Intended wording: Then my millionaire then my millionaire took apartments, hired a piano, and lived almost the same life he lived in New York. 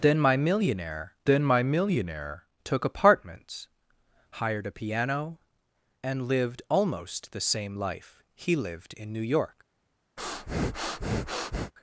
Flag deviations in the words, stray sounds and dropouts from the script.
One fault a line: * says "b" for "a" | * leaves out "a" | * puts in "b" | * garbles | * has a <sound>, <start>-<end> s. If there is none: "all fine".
* has a breath, 10.2-11.7 s